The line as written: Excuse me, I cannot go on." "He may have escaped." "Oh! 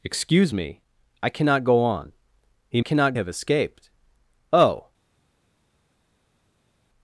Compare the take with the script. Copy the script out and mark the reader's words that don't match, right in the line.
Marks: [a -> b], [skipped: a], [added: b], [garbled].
Excuse me, I cannot go on." "He [may -> cannot] have escaped." "Oh!